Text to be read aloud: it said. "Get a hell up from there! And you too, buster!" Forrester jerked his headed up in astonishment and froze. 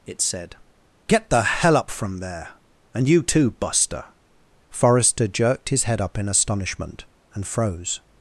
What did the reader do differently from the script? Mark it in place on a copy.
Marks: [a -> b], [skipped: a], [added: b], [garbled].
it said. "Get [a -> the] hell up from there! And you too, buster!" Forrester jerked his [headed -> head] up in astonishment and froze.